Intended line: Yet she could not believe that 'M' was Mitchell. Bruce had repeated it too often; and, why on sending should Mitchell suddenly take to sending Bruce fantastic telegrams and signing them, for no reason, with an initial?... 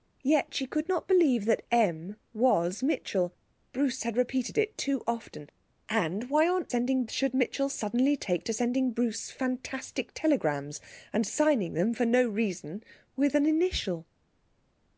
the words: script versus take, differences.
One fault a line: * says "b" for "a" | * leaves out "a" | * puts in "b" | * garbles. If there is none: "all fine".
all fine